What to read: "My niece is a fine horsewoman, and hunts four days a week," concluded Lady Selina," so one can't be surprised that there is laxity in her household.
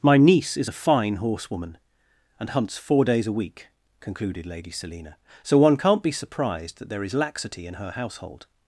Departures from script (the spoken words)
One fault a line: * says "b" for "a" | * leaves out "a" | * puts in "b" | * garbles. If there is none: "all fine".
all fine